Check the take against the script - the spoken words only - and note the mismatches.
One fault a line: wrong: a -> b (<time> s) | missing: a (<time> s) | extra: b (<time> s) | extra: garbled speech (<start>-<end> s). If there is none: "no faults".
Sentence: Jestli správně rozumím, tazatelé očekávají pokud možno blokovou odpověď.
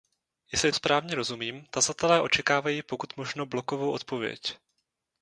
no faults